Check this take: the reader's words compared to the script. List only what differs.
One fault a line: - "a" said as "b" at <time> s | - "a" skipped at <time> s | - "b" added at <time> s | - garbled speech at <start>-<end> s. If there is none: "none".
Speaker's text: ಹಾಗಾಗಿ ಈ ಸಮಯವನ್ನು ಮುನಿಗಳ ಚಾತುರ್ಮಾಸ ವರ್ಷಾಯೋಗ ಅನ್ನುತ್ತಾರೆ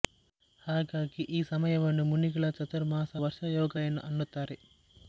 none